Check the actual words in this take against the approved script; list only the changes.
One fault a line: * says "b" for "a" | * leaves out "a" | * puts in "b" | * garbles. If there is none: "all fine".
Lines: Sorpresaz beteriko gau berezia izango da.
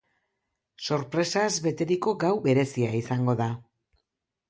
all fine